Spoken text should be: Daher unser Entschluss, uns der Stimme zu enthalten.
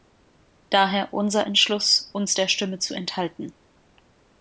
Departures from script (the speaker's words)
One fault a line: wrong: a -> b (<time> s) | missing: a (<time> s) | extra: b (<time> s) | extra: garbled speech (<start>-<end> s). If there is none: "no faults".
no faults